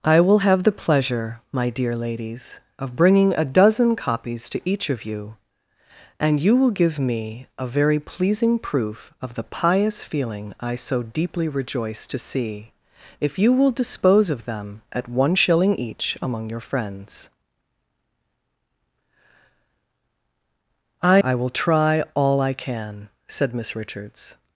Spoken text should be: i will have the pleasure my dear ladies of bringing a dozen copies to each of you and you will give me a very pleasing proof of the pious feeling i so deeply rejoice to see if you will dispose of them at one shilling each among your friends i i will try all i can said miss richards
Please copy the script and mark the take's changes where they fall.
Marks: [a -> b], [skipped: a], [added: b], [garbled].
i will have the pleasure my dear ladies of bringing a dozen copies to each of you and you will give me a very pleasing proof of the pious feeling i so deeply rejoice to see if you will dispose of them at one shilling each among your friends i i will try all i can said miss richards